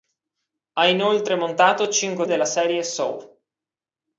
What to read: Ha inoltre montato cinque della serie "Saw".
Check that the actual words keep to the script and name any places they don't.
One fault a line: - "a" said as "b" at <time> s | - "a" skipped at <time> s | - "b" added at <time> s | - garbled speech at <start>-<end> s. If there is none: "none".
none